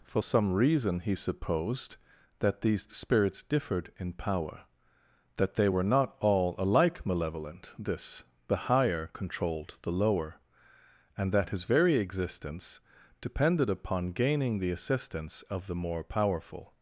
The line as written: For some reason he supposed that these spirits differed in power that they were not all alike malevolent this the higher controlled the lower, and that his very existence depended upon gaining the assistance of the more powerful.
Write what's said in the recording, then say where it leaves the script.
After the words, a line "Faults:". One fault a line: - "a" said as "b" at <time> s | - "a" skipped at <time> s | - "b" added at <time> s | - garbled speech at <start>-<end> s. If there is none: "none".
For some reason he supposed that these spirits differed in power that they were not all alike malevolent this the higher controlled the lower, and that his very existence depended upon gaining the assistance of the more powerful.
Faults:
none